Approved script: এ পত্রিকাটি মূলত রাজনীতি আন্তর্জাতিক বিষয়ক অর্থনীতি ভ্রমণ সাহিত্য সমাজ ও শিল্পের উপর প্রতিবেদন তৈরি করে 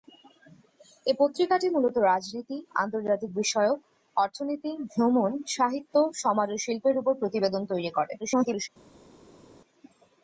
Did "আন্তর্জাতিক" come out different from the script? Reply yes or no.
no